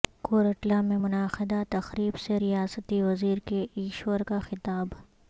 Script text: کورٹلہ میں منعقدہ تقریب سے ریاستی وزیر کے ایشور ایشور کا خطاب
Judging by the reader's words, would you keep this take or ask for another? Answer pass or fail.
fail